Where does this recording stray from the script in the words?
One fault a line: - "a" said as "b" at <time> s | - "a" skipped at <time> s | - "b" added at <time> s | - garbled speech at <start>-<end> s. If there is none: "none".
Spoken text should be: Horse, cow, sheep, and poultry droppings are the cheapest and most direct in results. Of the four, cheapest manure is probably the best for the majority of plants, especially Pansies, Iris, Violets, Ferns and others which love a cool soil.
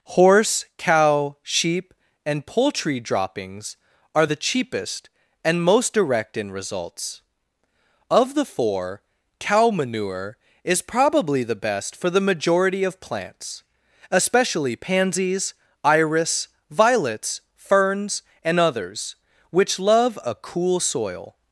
- "cheapest" said as "cow" at 9.4 s